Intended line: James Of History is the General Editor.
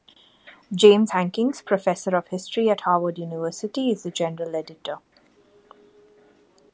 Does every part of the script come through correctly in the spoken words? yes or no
no